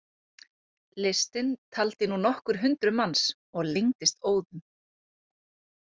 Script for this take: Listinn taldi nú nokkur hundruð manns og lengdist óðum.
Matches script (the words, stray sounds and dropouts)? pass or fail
pass